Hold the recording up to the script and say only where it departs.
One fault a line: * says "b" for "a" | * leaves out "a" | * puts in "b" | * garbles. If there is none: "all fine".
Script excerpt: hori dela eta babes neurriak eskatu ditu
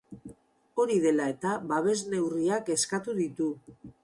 all fine